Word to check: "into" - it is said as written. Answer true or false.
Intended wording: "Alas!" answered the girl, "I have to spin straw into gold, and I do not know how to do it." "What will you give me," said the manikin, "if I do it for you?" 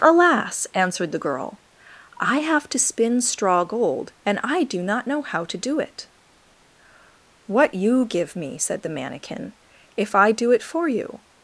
false